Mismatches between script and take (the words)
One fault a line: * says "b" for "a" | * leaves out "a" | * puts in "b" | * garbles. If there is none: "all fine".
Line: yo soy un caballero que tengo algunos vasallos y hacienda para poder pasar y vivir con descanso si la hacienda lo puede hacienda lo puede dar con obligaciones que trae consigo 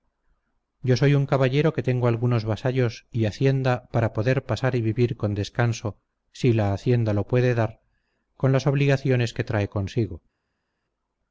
* leaves out "hacienda lo puede"
* puts in "las"